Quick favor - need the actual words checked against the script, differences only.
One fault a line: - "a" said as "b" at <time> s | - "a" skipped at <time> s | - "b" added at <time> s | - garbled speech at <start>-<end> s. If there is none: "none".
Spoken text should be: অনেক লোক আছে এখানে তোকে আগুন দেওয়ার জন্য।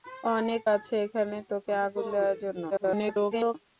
- "লোক" skipped at 0.6 s
- garbled speech at 2.7-3.6 s